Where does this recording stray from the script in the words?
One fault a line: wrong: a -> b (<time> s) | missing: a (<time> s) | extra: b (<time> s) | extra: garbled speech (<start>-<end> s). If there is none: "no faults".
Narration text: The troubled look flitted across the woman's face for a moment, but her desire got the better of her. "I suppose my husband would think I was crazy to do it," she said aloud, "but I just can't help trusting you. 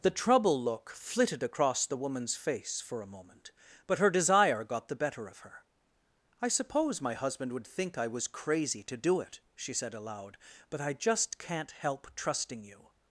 wrong: troubled -> trouble (0.1 s)